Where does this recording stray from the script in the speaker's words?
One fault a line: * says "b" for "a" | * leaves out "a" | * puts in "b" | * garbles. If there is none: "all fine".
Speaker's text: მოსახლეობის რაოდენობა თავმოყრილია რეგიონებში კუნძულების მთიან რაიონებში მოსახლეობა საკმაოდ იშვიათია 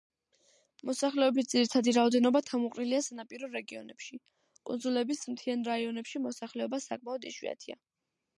* puts in "ძირითადი"
* puts in "სანაპირო"